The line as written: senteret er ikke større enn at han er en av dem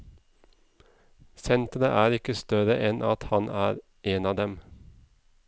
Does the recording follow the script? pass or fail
pass